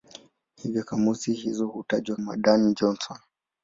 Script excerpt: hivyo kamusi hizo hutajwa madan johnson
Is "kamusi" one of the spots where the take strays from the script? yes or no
no